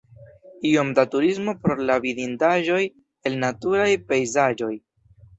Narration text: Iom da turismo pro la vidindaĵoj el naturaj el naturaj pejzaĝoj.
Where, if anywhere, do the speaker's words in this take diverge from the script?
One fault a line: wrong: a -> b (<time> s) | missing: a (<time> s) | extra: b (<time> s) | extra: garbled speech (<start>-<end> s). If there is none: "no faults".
missing: el naturaj (3.9 s)